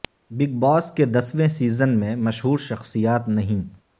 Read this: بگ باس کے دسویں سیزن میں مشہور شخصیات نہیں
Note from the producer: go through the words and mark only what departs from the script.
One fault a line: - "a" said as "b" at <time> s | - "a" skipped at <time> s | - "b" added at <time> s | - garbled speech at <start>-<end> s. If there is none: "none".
none